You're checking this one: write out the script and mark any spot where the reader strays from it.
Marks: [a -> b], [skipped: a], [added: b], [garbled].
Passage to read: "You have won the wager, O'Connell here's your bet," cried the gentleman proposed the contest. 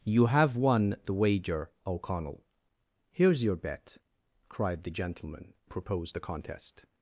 "You have won the wager, O'Connell here's your bet," cried the gentleman proposed the contest.